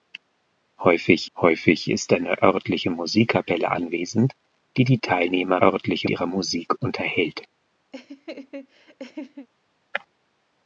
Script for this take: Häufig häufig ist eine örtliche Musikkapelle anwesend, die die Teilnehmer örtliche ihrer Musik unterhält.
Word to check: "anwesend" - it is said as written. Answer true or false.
true